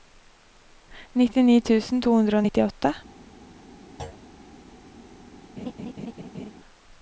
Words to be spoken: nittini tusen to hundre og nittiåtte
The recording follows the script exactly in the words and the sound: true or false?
false